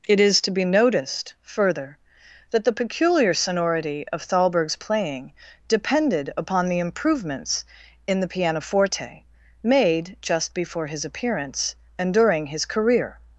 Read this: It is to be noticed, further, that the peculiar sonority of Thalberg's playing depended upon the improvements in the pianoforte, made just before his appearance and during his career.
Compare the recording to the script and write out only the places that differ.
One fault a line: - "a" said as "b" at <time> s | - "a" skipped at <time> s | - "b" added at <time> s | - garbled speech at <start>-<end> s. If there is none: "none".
none